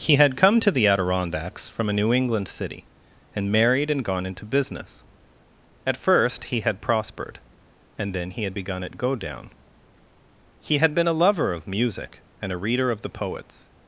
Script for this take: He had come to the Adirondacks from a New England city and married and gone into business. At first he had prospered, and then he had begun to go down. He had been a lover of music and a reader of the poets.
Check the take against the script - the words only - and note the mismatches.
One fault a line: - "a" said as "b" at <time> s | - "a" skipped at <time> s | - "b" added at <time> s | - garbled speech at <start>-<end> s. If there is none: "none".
- "to" said as "at" at 8.8 s